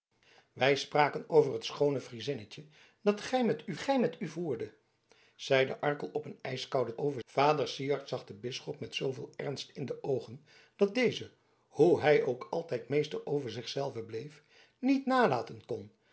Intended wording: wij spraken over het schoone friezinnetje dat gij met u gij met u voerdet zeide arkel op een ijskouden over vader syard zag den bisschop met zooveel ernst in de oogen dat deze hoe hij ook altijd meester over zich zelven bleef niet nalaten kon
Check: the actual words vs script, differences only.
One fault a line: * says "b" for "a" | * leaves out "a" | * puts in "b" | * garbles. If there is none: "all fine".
all fine